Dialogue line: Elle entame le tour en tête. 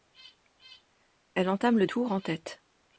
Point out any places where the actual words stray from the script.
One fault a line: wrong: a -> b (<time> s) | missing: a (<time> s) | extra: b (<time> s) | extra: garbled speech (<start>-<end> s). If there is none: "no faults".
no faults